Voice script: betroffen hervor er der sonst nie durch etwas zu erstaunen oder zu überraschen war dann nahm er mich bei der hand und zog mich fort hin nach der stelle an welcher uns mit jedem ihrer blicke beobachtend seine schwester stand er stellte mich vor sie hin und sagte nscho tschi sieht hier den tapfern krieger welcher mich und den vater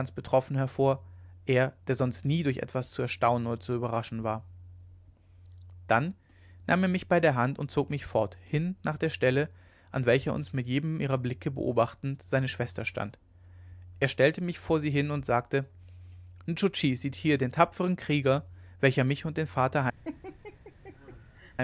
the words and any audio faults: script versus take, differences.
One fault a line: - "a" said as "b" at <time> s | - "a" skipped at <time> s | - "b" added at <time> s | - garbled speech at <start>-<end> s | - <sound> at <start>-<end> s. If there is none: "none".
- laugh at 20.0-21.5 s